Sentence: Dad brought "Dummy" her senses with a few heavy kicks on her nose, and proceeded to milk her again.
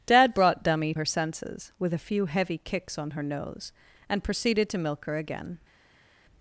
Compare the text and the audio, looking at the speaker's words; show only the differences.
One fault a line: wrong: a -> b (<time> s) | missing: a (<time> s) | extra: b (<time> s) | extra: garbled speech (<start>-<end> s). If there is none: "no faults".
no faults